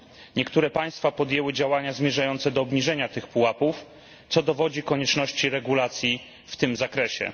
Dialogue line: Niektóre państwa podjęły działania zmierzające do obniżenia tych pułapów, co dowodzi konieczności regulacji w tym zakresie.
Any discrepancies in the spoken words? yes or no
no